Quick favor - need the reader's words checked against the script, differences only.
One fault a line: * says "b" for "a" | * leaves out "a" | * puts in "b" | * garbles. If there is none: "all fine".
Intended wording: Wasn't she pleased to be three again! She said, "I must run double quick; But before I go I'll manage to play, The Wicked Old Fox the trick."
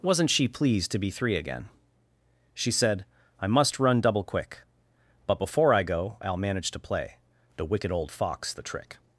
all fine